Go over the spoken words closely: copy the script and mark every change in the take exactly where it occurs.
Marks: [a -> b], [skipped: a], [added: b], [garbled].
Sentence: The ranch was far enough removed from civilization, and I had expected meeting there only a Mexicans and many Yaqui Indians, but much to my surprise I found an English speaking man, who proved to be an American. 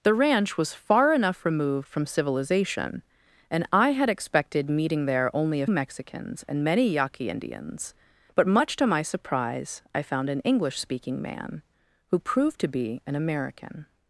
The ranch was far enough removed from civilization, and I had expected meeting there only a Mexicans and many Yaqui Indians, but much to my surprise I found an English speaking man, who proved to be an American.